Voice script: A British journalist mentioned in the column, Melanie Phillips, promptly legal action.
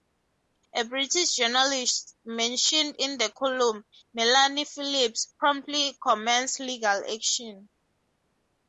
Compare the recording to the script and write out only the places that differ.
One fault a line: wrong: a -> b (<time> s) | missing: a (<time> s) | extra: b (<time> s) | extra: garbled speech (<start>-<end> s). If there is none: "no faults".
extra: commenced (6.1 s)